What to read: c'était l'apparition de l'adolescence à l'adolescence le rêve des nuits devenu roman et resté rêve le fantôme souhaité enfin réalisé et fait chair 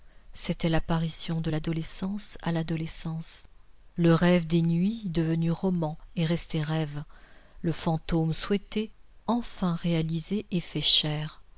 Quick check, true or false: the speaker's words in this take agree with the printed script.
true